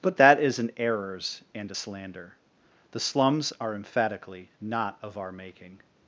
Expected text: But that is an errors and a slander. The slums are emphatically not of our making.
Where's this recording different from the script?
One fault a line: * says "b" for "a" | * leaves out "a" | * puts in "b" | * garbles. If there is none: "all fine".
all fine